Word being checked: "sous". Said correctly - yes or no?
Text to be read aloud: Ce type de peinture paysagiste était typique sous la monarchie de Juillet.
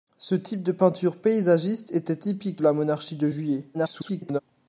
no